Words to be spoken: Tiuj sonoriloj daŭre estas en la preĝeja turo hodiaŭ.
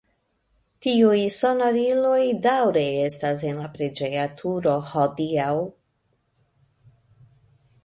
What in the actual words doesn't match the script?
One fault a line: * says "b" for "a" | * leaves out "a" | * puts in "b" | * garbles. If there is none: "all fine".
all fine